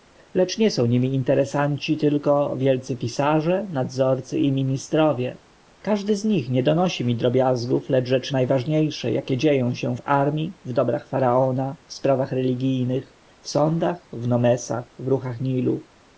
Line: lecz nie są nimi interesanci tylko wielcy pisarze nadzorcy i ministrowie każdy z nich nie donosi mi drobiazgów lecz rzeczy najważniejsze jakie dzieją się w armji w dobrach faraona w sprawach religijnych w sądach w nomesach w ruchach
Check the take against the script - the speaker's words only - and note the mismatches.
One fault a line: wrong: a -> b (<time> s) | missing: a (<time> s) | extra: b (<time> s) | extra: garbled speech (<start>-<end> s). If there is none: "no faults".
no faults